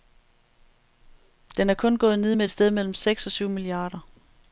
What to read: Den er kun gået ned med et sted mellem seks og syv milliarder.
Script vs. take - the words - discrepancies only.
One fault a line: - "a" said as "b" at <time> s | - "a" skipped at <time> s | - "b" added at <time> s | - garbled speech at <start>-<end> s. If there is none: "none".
none